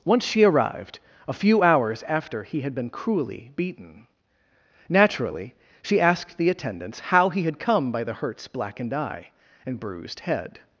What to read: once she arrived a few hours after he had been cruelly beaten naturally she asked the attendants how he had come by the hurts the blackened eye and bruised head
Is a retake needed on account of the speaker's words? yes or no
yes